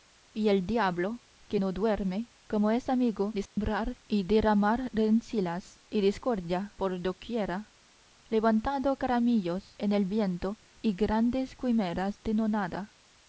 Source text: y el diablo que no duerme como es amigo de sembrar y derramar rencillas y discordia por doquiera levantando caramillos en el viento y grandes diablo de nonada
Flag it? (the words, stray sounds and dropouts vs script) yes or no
yes